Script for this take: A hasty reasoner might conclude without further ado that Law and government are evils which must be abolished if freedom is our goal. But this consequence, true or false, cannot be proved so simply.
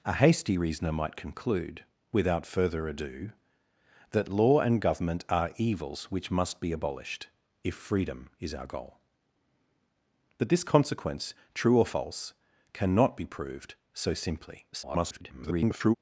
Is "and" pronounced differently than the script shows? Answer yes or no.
no